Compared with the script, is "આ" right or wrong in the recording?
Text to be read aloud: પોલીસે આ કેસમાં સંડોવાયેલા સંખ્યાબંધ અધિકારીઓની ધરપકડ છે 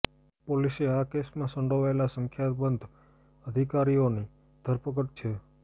right